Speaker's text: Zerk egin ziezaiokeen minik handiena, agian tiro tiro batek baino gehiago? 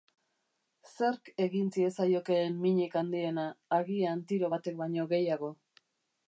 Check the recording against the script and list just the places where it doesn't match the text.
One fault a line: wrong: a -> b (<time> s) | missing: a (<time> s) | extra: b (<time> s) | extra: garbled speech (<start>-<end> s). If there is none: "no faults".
missing: tiro (4.5 s)